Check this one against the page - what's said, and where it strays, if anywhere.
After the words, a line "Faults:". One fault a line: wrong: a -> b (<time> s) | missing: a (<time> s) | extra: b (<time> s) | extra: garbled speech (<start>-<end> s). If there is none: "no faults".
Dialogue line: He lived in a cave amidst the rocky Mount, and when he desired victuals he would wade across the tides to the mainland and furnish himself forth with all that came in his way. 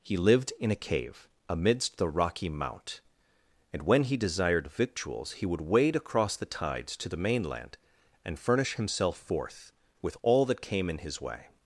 He lived in a cave amidst the rocky Mount, and when he desired victuals he would wade across the tides to the mainland and furnish himself forth with all that came in his way.
Faults:
no faults